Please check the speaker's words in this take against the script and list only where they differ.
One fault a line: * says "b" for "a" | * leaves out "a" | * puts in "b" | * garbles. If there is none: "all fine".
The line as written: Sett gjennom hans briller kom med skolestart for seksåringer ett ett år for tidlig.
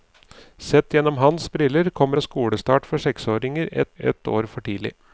all fine